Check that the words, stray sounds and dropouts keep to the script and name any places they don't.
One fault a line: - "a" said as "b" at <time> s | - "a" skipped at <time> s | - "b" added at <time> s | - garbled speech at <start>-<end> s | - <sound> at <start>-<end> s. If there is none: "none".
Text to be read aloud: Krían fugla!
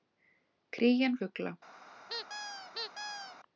- squeak at 2.1-3.4 s